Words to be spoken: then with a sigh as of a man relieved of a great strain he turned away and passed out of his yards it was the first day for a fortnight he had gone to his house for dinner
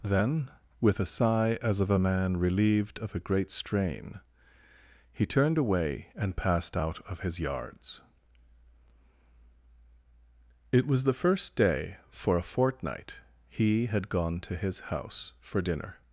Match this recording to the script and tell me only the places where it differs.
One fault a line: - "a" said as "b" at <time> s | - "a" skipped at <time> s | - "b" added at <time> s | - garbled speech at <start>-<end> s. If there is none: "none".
none